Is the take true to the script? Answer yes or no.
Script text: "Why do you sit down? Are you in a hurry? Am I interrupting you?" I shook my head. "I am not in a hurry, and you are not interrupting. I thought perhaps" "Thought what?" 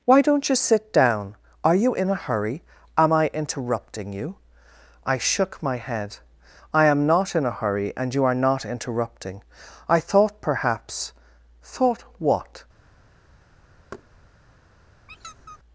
no